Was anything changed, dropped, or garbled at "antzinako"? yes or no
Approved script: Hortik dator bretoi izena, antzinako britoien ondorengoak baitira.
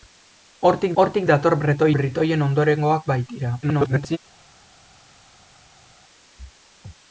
yes